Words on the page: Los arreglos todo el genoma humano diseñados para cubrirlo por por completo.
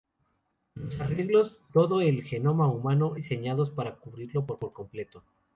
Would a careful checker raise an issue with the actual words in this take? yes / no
no